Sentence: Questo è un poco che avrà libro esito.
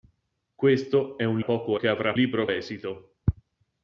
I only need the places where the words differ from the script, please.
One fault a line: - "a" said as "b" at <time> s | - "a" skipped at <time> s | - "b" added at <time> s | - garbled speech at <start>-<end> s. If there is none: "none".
none